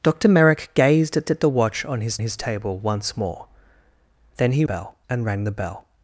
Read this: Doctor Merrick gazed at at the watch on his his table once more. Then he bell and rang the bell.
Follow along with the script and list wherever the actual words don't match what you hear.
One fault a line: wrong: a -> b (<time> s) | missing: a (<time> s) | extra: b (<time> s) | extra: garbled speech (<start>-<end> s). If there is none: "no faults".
no faults